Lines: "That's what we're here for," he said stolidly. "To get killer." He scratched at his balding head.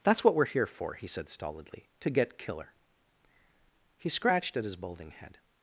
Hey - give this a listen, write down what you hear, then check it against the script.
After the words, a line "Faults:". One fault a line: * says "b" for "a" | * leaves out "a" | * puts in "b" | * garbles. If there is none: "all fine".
"That's what we're here for," he said stolidly. "To get killer." He scratched at his balding head.
Faults:
all fine